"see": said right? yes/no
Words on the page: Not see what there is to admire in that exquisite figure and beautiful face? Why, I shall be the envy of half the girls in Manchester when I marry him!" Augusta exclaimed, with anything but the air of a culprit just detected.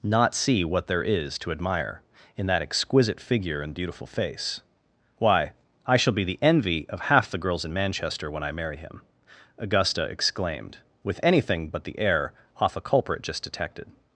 yes